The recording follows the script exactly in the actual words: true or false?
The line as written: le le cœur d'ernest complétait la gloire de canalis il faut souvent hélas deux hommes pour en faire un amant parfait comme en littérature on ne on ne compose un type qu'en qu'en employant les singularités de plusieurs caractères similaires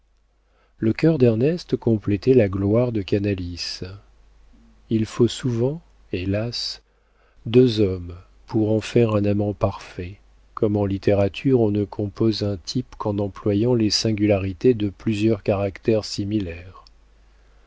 false